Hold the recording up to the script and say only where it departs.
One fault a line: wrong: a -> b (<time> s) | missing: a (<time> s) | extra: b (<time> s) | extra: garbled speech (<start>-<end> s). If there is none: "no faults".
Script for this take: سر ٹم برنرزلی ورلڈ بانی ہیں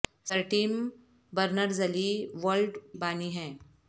no faults